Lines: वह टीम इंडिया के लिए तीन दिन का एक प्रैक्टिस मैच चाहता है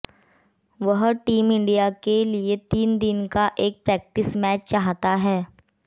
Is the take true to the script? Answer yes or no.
yes